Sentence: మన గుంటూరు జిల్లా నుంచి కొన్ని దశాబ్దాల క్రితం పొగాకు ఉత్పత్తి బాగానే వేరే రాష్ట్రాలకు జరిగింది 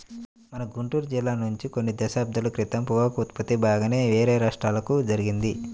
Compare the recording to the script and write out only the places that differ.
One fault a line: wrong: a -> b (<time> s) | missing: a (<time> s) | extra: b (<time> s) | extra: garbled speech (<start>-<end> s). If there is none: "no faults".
no faults